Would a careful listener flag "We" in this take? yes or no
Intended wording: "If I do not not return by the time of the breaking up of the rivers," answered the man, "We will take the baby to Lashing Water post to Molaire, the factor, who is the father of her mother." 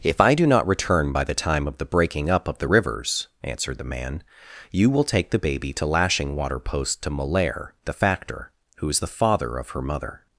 yes